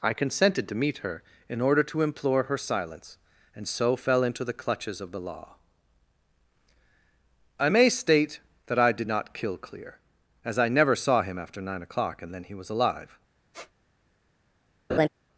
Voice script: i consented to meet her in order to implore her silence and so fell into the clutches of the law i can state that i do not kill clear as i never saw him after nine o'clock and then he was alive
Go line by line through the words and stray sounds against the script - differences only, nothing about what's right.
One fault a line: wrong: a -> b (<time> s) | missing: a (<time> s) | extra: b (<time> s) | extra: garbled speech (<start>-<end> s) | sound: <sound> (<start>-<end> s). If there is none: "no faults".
wrong: can -> may (7.7 s)
wrong: do -> did (8.9 s)
sound: squeak (13.5-13.7 s)
sound: laugh (14.9-15.1 s)